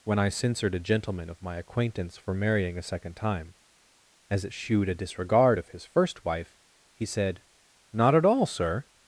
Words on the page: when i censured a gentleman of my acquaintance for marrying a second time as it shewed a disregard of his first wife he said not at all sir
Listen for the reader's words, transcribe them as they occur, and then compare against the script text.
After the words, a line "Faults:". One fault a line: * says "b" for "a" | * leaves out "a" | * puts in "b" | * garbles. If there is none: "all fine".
when i censured a gentleman of my acquaintance for marrying a second time as it shewed a disregard of his first wife he said not at all sir
Faults:
all fine